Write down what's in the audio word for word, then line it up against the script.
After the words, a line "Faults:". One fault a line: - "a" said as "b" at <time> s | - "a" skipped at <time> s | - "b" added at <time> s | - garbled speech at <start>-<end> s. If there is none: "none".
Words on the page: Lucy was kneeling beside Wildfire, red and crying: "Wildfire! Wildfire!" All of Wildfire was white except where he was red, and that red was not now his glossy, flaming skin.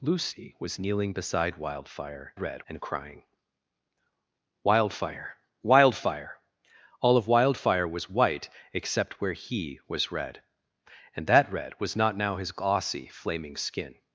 Lucy was kneeling beside Wildfire, red and crying: "Wildfire! Wildfire!" All of Wildfire was white except where he was red, and that red was not now his glossy, flaming skin.
Faults:
none